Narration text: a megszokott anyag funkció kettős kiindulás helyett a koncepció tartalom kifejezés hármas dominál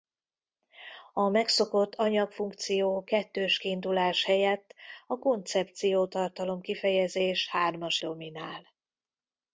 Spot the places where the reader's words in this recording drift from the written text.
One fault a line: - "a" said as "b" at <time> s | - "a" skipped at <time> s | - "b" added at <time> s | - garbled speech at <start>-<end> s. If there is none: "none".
none